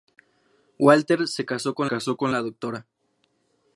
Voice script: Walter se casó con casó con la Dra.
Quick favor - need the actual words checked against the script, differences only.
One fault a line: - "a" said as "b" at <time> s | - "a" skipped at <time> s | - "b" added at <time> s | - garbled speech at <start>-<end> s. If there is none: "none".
none